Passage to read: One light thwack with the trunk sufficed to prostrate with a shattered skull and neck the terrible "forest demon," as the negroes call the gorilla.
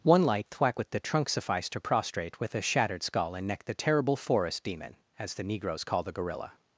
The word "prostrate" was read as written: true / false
true